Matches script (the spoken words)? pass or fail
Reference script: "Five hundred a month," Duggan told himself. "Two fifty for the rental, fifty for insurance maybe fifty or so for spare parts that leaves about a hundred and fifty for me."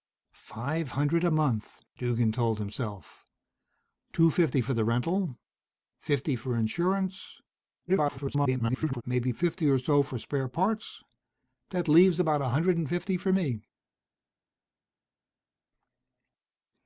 fail